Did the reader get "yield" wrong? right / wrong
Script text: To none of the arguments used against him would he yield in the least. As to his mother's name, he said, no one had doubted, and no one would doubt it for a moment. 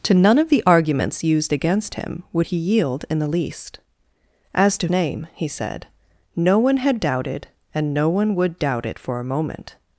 right